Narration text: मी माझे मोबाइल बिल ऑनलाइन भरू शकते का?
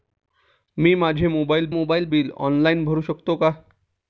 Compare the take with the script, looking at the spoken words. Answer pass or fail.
fail